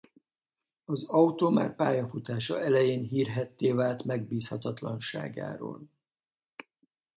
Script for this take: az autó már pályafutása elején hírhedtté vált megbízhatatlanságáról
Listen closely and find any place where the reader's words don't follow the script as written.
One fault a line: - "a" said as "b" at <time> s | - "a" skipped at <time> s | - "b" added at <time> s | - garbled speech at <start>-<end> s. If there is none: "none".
none